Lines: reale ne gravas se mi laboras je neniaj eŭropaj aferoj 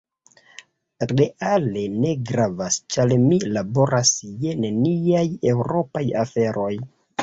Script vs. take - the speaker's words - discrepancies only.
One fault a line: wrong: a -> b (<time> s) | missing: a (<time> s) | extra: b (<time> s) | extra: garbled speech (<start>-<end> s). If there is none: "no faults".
wrong: se -> ĉar (3.0 s)